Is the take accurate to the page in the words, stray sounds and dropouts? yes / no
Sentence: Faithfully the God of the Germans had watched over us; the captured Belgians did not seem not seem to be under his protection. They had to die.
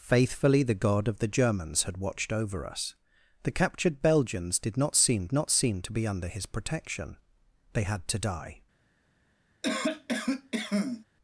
no